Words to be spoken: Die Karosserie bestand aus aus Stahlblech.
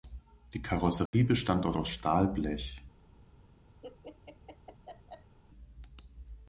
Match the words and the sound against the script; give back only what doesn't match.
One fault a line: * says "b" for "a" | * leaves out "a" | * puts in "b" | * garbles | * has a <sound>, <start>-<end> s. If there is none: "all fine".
* has a dropout, 1.1-1.1 s
* has a laugh, 3.8-5.4 s